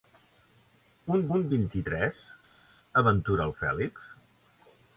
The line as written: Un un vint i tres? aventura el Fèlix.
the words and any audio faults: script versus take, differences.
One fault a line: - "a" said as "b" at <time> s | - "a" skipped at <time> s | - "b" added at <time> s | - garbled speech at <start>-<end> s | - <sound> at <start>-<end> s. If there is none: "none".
none